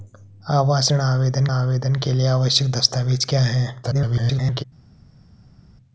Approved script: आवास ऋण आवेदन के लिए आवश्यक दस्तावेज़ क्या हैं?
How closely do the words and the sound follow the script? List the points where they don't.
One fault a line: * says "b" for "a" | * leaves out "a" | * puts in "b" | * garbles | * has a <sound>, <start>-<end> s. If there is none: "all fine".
* puts in "आवेदन"
* garbles